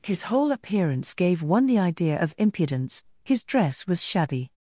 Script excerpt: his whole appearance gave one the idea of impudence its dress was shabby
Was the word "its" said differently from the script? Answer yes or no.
yes